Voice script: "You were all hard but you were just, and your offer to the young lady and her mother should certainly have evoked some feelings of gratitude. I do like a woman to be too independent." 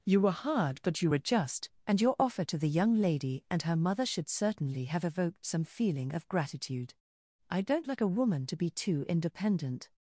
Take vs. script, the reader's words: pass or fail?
fail